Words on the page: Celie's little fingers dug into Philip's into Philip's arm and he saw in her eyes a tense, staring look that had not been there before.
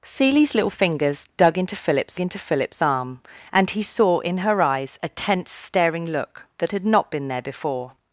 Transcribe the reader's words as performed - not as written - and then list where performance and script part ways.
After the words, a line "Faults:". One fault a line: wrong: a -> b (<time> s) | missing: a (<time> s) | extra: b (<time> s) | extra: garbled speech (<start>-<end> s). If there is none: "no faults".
Celie's little fingers dug into Philip's into Philip's arm and he saw in her eyes a tense, staring look that had not been there before.
Faults:
no faults